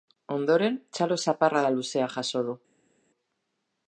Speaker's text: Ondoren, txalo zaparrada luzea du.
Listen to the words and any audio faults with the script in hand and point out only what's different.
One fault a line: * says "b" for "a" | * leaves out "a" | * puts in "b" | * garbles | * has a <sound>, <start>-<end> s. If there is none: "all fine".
* puts in "jaso"